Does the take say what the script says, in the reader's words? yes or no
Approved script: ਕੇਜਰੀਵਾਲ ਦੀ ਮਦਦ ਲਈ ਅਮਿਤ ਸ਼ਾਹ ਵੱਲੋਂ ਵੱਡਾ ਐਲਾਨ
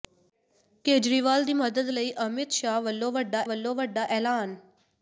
no